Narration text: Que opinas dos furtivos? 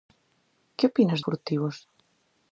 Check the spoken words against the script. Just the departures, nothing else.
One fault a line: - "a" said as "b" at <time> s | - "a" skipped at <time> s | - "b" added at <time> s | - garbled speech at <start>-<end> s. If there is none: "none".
- "dos" skipped at 1.2 s